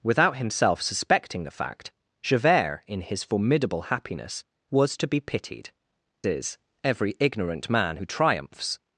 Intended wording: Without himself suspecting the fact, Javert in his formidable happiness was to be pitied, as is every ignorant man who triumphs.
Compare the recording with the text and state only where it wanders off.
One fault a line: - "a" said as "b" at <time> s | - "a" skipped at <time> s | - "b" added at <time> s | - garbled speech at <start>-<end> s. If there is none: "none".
- "as" skipped at 5.7 s